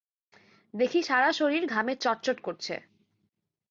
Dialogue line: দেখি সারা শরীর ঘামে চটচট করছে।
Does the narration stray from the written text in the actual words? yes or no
no